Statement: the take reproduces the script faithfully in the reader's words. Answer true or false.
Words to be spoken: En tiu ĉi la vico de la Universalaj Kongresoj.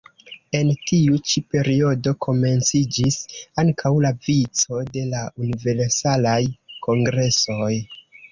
false